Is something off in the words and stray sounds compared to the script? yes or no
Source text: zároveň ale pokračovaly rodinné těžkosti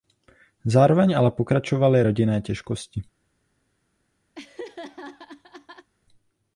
yes